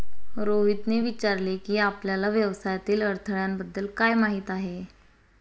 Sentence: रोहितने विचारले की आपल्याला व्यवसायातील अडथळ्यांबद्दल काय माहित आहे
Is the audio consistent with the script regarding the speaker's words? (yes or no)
yes